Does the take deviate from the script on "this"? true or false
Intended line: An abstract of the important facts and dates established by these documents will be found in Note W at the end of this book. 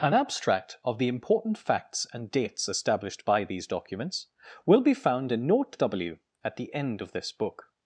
false